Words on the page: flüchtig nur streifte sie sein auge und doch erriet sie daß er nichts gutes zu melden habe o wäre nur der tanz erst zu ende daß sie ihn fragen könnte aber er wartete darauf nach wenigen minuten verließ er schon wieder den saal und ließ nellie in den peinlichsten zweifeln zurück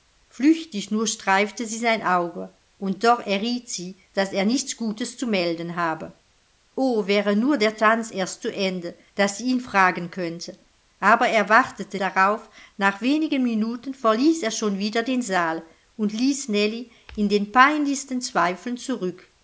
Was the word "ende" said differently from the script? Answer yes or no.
no